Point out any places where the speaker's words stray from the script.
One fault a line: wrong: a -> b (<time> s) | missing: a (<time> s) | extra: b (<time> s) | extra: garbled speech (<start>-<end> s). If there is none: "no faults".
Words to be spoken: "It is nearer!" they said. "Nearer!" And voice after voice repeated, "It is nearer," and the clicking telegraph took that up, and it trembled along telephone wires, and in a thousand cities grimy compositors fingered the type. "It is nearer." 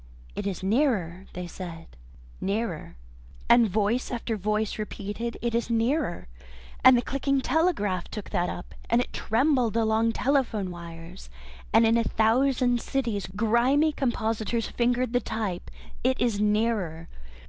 no faults